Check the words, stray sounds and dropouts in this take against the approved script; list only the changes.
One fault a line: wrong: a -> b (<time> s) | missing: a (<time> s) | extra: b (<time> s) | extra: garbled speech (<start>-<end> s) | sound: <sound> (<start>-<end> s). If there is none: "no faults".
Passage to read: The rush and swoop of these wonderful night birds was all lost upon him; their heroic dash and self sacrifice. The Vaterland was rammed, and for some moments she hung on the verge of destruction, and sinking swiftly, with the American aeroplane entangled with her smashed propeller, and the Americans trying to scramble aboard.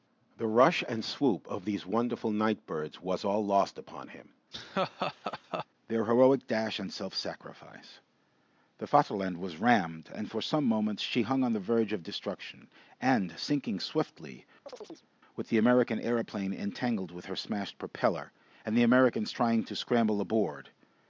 sound: laugh (4.5-5.7 s)
sound: chirp (14.7-15.1 s)